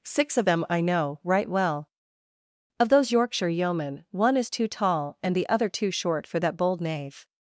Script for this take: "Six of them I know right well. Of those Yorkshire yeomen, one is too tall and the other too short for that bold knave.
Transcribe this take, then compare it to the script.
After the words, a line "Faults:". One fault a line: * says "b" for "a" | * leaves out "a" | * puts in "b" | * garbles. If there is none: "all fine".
"Six of them I know right well. Of those Yorkshire yeomen, one is too tall and the other too short for that bold knave.
Faults:
all fine